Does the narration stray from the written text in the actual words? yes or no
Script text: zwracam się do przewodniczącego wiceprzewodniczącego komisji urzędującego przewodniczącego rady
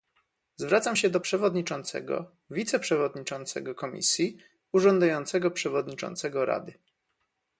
no